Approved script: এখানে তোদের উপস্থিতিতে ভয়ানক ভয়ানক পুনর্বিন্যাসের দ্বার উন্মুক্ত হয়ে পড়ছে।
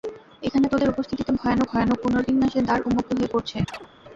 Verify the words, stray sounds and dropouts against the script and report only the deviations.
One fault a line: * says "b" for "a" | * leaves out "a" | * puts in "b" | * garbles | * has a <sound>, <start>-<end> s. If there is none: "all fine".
* has a chirp, 3.7-3.9 s